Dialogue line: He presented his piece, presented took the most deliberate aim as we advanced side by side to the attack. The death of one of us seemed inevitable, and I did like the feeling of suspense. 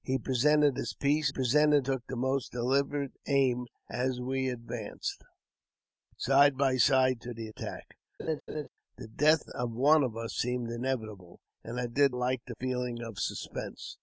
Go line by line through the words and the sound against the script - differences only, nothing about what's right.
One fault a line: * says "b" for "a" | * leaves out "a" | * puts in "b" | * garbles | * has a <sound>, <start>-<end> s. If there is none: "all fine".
* has a laugh, 8.2-8.7 s